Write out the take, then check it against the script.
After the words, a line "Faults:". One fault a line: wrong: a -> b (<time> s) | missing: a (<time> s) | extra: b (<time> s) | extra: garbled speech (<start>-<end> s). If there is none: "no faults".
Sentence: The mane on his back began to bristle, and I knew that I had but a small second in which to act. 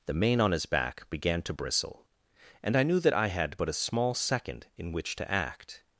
The mane on his back began to bristle, and I knew that I had but a small second in which to act.
Faults:
no faults